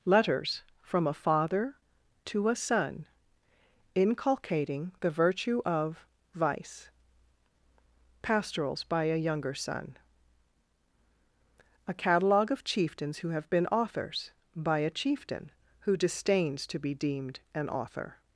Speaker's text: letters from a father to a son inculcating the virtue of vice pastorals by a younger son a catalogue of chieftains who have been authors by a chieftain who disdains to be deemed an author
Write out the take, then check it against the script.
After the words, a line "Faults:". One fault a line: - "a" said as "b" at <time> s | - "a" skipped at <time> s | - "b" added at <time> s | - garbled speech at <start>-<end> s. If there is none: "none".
letters from a father to a son inculcating the virtue of vice pastorals by a younger son a catalogue of chieftains who have been authors by a chieftain who disdains to be deemed an author
Faults:
none